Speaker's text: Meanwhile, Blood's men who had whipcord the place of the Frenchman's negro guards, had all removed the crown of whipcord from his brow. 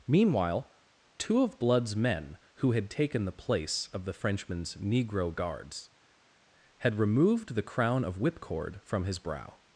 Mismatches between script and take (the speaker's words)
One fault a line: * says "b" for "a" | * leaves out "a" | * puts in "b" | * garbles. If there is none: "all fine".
* puts in "two of"
* says "taken" for "whipcord"
* leaves out "all"